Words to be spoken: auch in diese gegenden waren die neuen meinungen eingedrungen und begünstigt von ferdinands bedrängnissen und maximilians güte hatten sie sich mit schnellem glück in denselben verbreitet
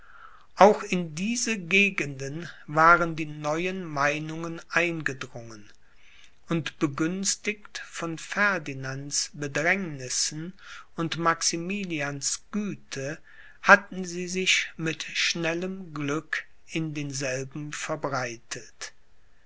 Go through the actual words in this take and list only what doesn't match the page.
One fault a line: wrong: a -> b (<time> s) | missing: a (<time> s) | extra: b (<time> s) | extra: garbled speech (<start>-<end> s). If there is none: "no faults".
no faults